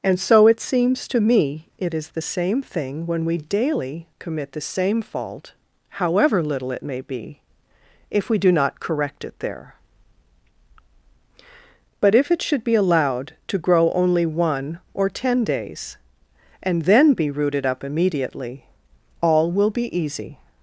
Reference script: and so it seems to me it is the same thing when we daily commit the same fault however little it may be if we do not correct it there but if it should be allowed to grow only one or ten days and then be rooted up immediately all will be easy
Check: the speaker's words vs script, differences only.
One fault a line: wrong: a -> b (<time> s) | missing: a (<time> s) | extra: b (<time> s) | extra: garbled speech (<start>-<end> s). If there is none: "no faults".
no faults